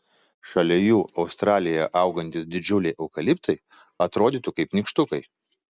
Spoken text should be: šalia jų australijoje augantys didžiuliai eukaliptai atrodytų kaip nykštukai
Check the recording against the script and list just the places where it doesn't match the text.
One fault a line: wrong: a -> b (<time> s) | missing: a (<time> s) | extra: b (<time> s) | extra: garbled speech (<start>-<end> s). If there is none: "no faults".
no faults